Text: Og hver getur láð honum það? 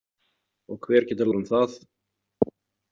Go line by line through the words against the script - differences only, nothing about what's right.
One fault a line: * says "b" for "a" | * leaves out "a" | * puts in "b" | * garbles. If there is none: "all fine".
* leaves out "láð"